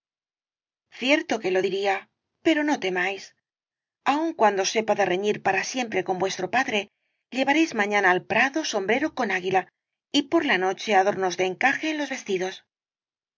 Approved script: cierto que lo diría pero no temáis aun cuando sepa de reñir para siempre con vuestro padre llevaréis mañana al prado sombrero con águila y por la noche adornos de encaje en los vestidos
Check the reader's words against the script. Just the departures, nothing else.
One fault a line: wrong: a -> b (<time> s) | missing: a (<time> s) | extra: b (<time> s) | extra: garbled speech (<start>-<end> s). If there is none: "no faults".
no faults